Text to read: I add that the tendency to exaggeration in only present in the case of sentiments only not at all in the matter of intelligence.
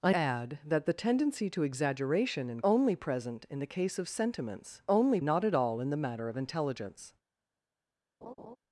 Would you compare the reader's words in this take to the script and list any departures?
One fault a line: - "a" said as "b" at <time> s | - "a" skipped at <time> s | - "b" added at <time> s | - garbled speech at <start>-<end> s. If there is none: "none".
none